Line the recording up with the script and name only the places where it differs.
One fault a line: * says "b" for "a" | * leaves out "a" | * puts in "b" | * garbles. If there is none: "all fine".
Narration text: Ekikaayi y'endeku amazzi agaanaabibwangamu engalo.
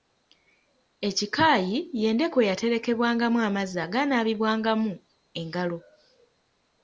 * puts in "eyaterekebwangamu"